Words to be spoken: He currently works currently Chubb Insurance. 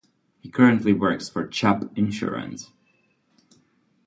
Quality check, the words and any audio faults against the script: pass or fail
fail